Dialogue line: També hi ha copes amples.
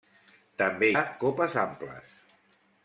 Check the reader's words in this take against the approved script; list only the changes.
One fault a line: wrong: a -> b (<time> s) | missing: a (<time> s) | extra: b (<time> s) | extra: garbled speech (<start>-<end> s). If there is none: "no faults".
missing: hi (0.9 s)